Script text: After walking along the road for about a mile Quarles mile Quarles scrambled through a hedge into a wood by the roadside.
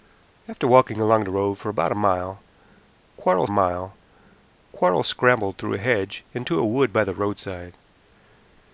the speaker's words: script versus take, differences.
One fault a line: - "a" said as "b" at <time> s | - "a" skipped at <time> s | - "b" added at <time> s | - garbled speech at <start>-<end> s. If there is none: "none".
none